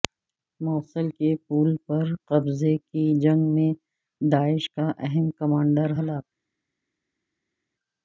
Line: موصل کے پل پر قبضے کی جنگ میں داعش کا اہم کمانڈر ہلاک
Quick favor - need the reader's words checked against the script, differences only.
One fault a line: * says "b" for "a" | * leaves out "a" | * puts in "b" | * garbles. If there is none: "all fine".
all fine